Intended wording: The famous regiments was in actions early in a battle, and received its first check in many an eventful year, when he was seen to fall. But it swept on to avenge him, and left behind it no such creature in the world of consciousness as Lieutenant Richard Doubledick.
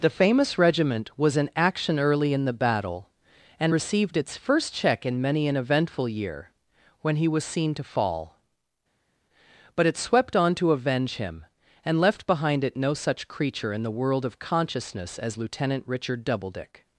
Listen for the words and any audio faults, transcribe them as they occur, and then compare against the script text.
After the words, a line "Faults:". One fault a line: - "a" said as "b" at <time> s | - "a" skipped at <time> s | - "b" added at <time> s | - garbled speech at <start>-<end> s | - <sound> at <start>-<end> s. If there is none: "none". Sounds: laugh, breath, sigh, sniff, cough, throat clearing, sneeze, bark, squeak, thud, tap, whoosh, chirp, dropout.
The famous regiment was in action early in the battle, and received its first check in many an eventful year, when he was seen to fall. But it swept on to avenge him, and left behind it no such creature in the world of consciousness as Lieutenant Richard Doubledick.
Faults:
- "regiments" said as "regiment" at 0.6 s
- "actions" said as "action" at 1.6 s
- "a" said as "the" at 2.5 s